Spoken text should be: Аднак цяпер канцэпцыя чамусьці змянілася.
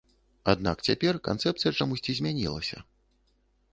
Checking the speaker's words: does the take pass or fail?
pass